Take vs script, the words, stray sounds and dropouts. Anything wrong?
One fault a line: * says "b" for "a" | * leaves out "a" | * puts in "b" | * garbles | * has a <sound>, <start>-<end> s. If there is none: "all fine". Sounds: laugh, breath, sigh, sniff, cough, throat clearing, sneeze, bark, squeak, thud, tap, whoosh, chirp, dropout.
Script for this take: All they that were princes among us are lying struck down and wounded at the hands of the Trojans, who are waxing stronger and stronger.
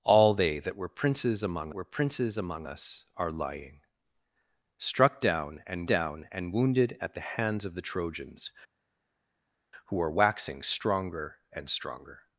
* puts in "were princes among"
* puts in "down and"